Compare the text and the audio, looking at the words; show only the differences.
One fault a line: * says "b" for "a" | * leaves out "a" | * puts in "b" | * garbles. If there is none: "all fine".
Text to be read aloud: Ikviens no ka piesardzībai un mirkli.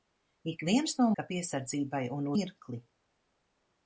all fine